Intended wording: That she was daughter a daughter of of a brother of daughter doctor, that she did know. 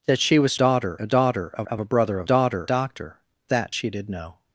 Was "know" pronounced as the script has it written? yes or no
yes